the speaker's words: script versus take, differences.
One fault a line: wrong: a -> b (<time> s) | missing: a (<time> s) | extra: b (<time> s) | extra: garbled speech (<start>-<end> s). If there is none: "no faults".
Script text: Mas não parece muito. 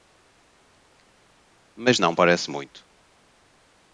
no faults